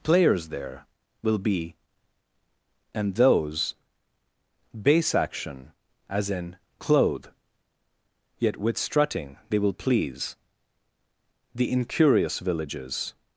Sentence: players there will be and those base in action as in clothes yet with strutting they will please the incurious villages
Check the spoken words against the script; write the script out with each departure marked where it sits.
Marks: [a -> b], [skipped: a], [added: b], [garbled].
players there will be and those base [skipped: in] action as in [clothes -> clothe] yet with strutting they will please the incurious villages